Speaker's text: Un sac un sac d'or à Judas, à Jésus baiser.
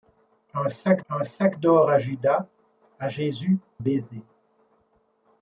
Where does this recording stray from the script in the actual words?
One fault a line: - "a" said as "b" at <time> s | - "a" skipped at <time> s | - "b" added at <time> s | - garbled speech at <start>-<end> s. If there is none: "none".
none